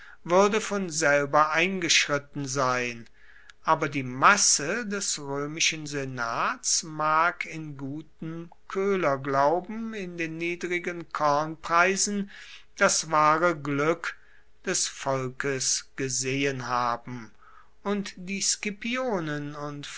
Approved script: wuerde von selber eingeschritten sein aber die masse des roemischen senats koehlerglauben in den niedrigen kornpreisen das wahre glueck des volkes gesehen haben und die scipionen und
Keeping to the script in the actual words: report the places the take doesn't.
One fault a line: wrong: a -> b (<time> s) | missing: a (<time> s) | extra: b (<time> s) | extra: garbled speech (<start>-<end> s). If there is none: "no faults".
extra: mag in gutem (6.8 s)